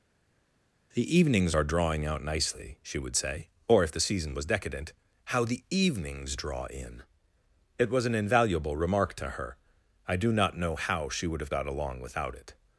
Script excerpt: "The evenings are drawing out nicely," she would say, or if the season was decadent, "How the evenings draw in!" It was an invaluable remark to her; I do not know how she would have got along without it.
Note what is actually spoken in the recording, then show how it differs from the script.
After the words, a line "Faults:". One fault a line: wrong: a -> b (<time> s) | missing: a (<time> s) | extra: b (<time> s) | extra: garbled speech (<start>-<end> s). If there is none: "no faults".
"The evenings are drawing out nicely," she would say, or if the season was decadent, "How the evenings draw in!" It was an invaluable remark to her; I do not know how she would have got along without it.
Faults:
no faults